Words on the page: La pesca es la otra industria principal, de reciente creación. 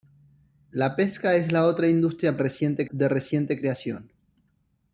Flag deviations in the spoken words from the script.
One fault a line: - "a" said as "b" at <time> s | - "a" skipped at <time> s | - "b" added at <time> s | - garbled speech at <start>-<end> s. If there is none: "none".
- "principal" said as "reciente" at 2.4 s